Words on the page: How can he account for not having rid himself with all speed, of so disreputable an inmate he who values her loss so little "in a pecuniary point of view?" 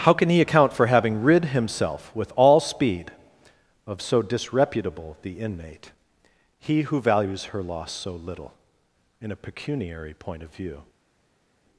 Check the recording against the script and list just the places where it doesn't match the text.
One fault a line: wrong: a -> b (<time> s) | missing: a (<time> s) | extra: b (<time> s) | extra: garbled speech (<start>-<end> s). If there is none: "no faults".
missing: not (0.9 s)
wrong: an -> the (5.2 s)